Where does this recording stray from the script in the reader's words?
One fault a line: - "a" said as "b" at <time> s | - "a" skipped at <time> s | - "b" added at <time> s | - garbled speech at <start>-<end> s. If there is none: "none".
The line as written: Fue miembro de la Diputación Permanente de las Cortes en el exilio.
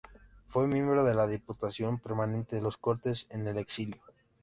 none